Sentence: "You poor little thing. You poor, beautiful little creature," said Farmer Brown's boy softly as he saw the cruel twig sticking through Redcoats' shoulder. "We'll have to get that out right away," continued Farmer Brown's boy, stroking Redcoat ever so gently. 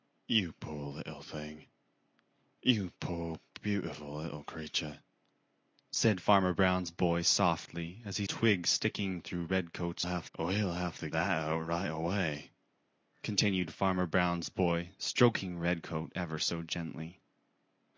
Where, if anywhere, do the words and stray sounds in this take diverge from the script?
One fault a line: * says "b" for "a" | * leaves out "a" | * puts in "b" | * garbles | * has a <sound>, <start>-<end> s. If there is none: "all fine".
* leaves out "saw the cruel"
* says "have" for "shoulder"
* leaves out "get"